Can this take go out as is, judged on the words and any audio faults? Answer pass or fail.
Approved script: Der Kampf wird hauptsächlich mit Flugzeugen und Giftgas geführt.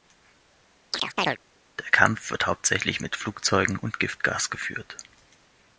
fail